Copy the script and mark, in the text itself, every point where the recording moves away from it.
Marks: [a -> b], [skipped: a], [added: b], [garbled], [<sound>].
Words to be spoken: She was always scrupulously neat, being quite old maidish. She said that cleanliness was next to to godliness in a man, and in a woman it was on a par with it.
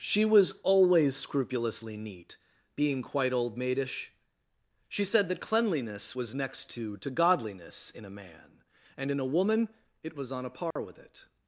She was always scrupulously neat, being quite old maidish. She said that cleanliness was next to to godliness in a man, and in a woman it was on a par [dropout] with it.